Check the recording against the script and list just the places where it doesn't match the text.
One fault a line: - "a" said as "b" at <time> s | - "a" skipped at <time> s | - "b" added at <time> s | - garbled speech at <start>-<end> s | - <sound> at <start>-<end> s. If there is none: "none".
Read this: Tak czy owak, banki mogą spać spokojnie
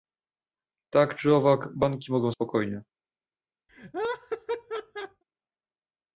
- "spać" skipped at 2.3 s
- laugh at 3.7-5.2 s